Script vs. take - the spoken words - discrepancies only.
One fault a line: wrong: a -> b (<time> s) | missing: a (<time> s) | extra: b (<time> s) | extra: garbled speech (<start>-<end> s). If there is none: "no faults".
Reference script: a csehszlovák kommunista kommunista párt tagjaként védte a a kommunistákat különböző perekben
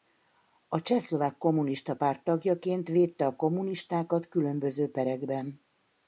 missing: kommunista (1.9 s)
missing: a (3.4 s)